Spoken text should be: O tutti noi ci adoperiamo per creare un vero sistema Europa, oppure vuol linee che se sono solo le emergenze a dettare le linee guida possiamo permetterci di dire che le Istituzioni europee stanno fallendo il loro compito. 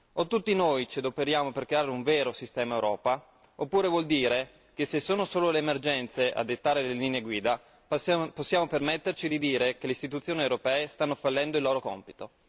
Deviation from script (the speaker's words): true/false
true